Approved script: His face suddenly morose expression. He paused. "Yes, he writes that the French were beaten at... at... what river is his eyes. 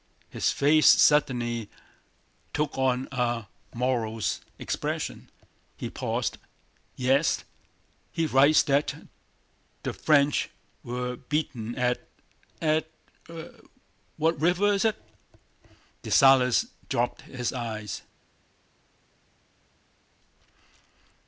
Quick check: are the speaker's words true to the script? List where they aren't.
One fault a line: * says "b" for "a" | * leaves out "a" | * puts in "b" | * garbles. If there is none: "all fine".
* puts in "took on a"
* puts in "it Dessalles dropped"